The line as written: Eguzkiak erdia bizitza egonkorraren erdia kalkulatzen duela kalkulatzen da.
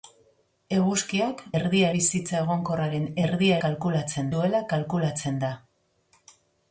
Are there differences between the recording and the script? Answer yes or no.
no